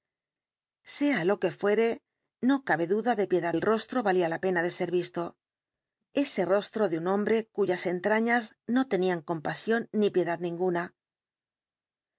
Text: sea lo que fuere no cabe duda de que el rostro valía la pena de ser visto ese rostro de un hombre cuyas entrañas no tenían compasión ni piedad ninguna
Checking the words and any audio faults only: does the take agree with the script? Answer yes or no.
no